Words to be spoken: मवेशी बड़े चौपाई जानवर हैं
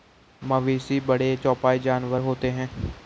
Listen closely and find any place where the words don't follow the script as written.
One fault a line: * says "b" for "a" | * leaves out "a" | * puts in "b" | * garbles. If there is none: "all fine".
* puts in "होते"